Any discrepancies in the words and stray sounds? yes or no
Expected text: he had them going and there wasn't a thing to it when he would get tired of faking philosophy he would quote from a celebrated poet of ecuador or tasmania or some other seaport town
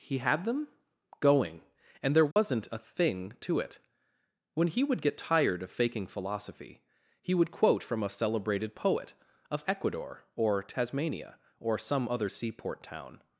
yes